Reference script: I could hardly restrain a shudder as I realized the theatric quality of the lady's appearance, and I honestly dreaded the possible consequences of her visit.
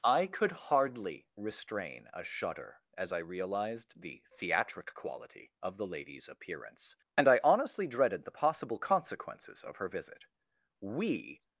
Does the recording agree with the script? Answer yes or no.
no